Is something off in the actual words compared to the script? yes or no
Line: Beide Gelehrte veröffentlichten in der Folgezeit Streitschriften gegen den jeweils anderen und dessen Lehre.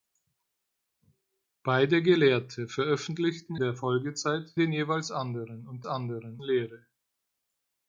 yes